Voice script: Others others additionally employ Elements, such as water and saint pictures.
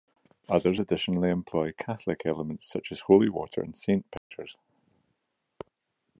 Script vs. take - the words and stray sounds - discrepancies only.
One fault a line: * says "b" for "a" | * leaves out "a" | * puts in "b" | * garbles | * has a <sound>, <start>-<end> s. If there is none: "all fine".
* leaves out "others"
* puts in "Catholic"
* puts in "holy"
* has a dropout, 4.2-4.3 s